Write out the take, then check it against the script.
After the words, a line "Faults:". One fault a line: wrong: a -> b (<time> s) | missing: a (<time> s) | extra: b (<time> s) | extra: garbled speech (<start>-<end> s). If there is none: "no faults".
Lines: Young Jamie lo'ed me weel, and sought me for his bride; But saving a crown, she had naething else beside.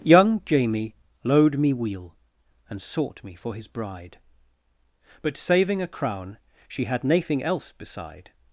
Young Jamie lo'ed me weel, and sought me for his bride; But saving a crown, she had naething else beside.
Faults:
no faults